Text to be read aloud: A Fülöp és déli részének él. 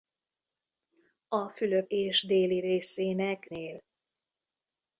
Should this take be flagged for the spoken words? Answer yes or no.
no